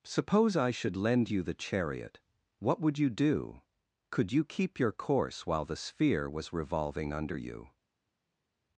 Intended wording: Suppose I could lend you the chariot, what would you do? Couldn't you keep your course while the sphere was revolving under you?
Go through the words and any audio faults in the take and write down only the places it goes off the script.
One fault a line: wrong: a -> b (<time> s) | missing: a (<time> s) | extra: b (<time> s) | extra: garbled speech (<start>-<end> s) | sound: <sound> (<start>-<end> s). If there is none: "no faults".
wrong: could -> should (0.7 s)
wrong: Couldn't -> Could (4.1 s)